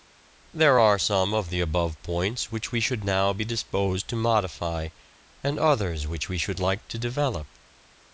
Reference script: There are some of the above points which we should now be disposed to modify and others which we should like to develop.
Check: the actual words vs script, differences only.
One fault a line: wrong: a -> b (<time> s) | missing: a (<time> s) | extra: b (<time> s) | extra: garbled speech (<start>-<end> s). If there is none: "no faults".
no faults